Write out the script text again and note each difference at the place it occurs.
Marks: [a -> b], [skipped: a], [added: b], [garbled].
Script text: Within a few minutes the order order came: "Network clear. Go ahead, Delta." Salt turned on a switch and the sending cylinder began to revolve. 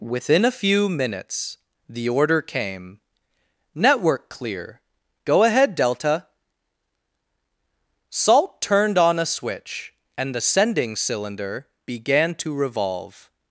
Within a few minutes the order [skipped: order] came: "Network clear. Go ahead, Delta." Salt turned on a switch and the sending cylinder began to revolve.